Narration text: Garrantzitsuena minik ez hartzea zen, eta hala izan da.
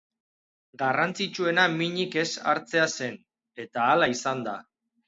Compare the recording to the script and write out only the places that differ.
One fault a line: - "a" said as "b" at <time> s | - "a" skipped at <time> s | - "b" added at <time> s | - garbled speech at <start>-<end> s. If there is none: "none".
none